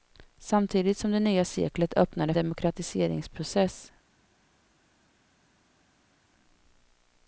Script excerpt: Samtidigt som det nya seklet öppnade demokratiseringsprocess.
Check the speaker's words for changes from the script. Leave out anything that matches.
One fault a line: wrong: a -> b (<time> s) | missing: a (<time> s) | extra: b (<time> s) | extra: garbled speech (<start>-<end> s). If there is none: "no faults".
no faults